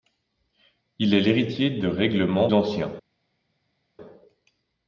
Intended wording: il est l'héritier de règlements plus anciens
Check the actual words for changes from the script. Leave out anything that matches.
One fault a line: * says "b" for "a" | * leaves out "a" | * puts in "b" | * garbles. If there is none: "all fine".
* leaves out "plus"